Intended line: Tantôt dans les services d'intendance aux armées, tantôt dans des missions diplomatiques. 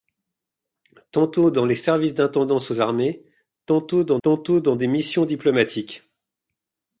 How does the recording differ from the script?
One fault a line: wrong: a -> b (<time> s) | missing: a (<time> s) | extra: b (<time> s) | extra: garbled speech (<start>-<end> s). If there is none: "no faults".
extra: tantôt dans (4.2 s)